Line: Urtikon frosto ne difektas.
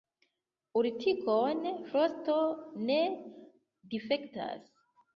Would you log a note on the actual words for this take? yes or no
no